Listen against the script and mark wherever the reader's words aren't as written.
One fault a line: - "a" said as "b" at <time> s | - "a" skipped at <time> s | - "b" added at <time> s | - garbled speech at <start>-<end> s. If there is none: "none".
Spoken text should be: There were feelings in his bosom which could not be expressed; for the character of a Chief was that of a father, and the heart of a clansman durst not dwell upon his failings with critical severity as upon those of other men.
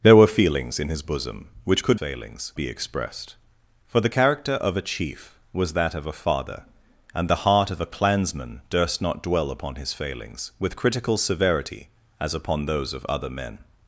- "not" said as "failings" at 1.9 s